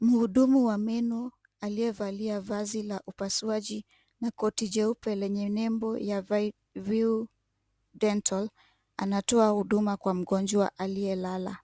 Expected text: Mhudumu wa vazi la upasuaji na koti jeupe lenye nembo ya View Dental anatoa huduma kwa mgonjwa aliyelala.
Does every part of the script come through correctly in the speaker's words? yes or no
no